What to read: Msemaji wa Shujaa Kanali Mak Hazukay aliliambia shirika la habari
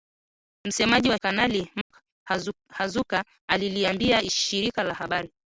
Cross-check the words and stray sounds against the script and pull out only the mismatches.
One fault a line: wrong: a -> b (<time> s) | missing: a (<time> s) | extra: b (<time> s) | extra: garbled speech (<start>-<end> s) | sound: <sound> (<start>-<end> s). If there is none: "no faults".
missing: Shujaa (1.2 s)
sound: dropout (1.8-1.9 s)